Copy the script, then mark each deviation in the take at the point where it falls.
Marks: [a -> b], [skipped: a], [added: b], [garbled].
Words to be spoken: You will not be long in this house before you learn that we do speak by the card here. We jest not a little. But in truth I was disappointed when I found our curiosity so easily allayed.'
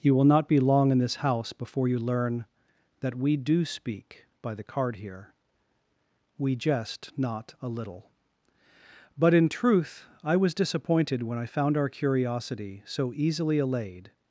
You will not be long in this house before you learn that we do speak by the card here. We jest not a little. But in truth I was disappointed when I found our curiosity so easily allayed.'